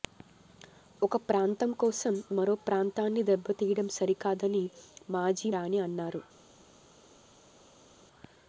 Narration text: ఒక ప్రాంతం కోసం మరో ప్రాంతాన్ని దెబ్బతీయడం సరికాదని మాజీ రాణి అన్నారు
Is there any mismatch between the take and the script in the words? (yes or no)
no